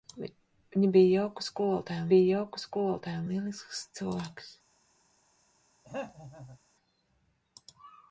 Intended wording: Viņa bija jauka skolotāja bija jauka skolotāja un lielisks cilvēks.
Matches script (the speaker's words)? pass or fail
pass